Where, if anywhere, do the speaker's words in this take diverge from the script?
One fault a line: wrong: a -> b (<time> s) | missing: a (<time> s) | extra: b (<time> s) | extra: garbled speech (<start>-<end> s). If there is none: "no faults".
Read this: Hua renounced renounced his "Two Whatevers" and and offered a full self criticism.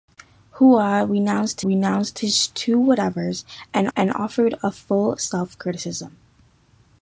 no faults